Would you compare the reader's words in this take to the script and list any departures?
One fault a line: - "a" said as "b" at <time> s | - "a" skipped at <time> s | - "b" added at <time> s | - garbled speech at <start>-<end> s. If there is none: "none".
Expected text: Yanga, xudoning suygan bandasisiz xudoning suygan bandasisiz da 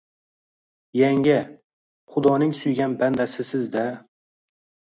- "xudoning suygan bandasisiz" skipped at 3.7 s